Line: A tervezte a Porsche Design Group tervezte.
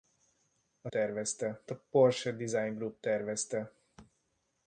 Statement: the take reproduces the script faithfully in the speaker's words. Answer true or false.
true